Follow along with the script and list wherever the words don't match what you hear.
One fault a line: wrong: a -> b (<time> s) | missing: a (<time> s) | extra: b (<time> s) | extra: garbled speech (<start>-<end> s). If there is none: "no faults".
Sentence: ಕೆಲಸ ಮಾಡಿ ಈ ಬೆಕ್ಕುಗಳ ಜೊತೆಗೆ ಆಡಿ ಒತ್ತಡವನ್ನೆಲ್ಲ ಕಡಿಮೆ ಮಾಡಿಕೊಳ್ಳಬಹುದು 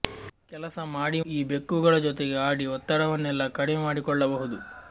no faults